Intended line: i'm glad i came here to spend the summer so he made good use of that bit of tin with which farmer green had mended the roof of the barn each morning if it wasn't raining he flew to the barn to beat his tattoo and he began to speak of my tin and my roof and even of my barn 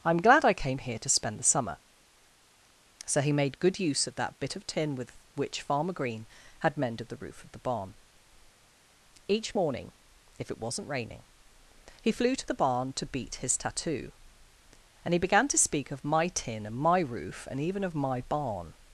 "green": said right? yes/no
yes